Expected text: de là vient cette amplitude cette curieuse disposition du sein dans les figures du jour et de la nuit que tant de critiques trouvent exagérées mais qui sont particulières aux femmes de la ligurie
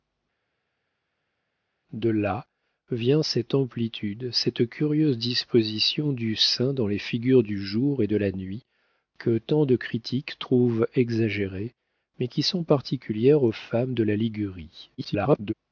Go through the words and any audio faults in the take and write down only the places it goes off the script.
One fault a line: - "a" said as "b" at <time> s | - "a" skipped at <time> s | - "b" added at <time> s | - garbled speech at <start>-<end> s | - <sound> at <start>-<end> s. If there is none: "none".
- garbled speech at 15.0-15.5 s